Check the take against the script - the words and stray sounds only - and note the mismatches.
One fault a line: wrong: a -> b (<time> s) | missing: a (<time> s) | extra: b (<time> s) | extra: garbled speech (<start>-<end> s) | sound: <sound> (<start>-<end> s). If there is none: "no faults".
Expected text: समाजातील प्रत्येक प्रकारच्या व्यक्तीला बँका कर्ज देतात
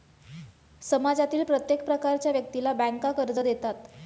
no faults